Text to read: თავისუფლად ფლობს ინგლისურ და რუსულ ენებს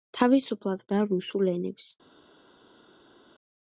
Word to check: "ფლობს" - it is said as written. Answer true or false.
false